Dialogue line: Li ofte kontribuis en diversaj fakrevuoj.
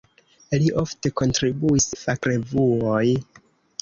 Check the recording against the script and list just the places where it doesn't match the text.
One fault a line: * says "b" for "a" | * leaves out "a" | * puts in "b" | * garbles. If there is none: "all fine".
* leaves out "en diversaj"